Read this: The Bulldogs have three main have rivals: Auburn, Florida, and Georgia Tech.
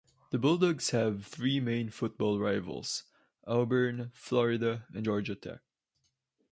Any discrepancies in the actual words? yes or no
yes